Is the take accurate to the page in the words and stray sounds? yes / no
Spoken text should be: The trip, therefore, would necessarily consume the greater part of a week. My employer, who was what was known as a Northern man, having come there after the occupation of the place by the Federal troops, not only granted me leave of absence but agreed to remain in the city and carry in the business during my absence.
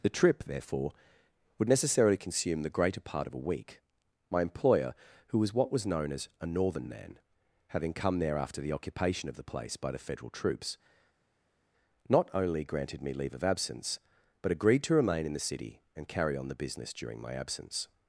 no